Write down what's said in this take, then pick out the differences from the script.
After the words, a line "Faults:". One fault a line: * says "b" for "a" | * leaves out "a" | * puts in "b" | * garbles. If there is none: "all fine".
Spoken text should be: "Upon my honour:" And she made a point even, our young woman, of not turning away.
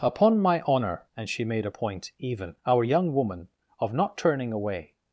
"Upon my honour:" And she made a point even, our young woman, of not turning away.
Faults:
all fine